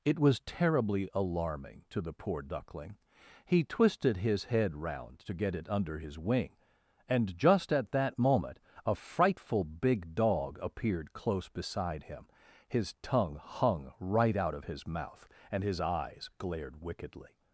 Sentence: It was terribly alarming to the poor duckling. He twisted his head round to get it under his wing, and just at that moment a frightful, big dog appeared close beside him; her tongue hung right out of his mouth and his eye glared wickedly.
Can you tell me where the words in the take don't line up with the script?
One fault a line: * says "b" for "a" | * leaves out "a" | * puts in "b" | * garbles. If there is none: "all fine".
* says "his" for "her"
* says "eyes" for "eye"